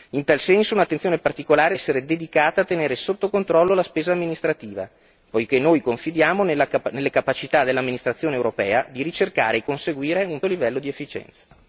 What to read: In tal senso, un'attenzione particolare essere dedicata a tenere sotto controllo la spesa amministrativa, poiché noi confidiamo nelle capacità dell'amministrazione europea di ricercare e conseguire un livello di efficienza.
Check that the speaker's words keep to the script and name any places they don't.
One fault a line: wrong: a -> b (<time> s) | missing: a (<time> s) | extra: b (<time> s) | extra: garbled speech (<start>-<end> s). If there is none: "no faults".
no faults